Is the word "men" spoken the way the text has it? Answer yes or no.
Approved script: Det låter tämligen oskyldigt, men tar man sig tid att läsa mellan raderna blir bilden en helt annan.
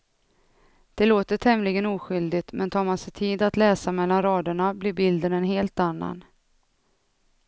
yes